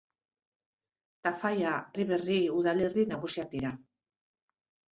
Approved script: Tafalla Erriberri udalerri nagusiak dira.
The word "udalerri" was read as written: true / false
true